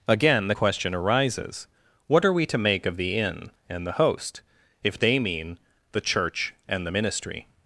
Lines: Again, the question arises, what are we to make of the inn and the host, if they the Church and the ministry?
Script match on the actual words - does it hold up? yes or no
no